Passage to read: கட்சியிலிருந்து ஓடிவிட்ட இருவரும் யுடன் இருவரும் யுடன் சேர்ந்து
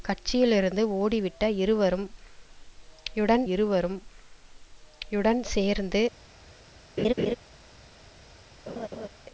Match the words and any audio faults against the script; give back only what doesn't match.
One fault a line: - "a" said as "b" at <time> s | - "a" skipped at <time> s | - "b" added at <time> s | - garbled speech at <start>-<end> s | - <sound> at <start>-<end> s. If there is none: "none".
- laugh at 7.0-7.4 s
- laugh at 8.7-9.1 s